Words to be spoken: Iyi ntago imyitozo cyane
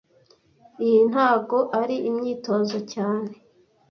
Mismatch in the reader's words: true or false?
true